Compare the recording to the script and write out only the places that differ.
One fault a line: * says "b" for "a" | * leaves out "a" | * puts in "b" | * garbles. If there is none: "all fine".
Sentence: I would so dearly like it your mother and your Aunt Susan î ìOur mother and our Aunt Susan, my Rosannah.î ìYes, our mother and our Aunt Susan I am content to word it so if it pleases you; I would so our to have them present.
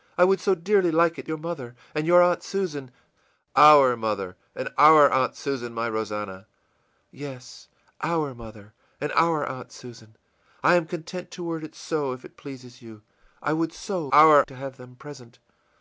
all fine